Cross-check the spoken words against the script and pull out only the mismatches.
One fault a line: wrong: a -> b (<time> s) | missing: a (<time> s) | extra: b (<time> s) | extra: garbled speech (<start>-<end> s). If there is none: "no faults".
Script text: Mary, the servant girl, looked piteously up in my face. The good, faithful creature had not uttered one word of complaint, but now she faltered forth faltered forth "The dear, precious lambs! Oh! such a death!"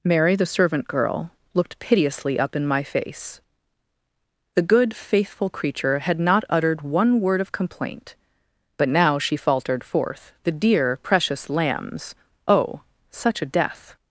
missing: faltered forth (10.3 s)